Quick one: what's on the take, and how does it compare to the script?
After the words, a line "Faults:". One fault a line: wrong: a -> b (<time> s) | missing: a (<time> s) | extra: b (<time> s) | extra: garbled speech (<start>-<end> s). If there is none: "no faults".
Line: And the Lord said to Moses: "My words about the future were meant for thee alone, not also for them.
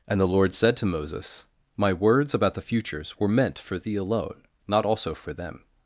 And the Lord said to Moses: "My words about the futures were meant for thee alone, not also for them.
Faults:
wrong: future -> futures (2.6 s)